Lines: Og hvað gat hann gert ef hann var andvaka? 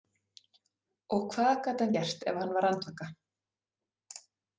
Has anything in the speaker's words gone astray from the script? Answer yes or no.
no